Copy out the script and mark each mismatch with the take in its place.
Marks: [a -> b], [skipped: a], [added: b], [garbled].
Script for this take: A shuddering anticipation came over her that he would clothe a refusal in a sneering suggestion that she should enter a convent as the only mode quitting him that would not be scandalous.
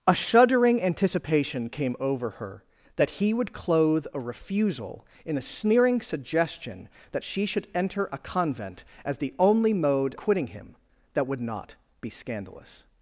A shuddering anticipation came over her that he would clothe a refusal in a sneering suggestion that she should enter a convent as the only mode quitting him that would not be scandalous.